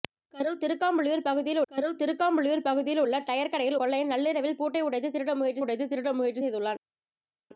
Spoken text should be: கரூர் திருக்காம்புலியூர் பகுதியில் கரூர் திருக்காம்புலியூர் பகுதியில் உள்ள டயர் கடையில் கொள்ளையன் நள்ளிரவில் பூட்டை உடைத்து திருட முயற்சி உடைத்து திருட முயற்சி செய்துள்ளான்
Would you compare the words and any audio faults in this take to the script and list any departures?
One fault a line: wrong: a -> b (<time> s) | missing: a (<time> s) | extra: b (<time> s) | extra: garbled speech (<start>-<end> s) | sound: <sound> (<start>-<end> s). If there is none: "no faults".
no faults